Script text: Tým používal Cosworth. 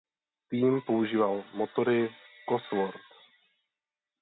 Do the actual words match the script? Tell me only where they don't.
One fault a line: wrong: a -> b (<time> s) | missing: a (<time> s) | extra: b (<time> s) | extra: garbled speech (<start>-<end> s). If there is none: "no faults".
extra: motory (1.5 s)